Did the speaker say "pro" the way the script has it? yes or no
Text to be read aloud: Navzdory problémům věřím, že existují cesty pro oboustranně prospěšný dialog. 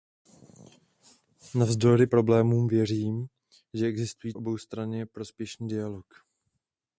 no